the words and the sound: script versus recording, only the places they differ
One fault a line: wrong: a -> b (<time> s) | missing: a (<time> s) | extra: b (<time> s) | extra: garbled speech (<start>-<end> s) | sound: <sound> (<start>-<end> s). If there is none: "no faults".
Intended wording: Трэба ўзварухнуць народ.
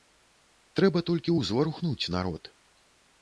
extra: толькі (1.1 s)